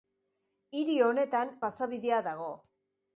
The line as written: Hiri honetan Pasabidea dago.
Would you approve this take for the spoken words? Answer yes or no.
yes